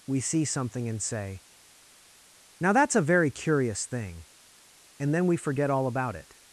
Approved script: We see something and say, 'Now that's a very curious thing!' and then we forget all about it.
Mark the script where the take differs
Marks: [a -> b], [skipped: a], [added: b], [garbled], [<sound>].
We see something and say, 'Now that's a very curious thing!' and then we forget all about it.